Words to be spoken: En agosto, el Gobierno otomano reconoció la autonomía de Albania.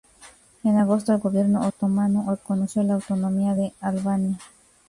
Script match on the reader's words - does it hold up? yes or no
yes